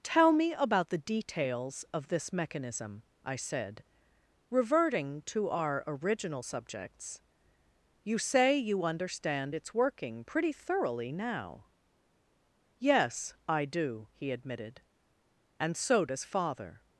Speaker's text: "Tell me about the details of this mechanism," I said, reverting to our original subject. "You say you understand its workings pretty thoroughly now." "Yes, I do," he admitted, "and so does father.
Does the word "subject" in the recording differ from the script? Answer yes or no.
yes